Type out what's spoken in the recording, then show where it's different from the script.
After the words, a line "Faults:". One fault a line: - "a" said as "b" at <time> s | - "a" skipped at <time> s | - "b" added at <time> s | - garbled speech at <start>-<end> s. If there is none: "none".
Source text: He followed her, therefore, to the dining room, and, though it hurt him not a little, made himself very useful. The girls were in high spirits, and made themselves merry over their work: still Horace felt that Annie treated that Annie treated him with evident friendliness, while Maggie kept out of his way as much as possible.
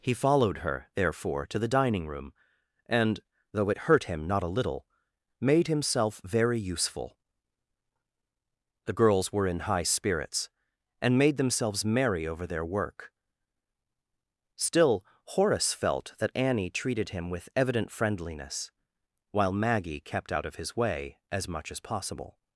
He followed her, therefore, to the dining room, and, though it hurt him not a little, made himself very useful. The girls were in high spirits, and made themselves merry over their work: still Horace felt that Annie treated him with evident friendliness, while Maggie kept out of his way as much as possible.
Faults:
- "that Annie treated" skipped at 17.1 s